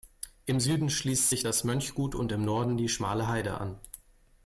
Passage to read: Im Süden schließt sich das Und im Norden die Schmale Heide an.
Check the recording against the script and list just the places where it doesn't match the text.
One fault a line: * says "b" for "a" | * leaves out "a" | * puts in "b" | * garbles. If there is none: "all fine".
* puts in "Mönchgut"